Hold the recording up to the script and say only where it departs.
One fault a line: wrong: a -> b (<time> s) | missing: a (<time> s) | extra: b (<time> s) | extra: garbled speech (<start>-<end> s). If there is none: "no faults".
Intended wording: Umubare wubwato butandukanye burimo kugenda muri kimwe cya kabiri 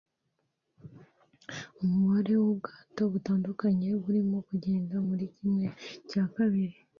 no faults